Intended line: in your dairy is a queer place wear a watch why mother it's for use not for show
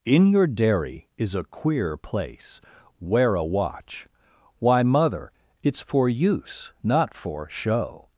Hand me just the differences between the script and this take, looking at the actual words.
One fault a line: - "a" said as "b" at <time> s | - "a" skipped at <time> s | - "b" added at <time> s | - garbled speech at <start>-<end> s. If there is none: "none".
none